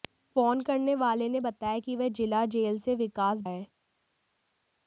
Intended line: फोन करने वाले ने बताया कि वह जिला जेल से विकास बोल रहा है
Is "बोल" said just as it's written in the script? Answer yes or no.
no